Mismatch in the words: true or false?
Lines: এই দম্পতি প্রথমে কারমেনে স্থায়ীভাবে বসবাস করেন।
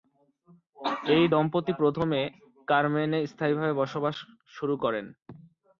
true